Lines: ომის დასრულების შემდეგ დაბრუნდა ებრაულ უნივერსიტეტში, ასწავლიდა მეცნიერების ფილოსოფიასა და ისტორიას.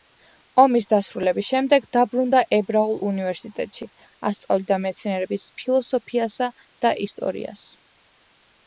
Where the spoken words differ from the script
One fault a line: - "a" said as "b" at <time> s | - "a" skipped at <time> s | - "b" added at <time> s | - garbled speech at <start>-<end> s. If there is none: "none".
none